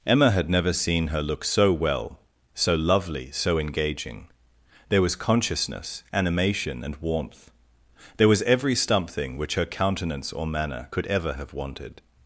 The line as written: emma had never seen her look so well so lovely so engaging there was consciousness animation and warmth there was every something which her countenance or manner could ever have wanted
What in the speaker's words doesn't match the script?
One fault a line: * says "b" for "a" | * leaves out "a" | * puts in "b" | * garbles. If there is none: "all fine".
all fine